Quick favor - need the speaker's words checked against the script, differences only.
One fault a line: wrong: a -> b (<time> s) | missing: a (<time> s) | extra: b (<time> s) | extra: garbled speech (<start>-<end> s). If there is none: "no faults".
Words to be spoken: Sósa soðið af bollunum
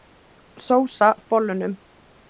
missing: soðið (1.1 s)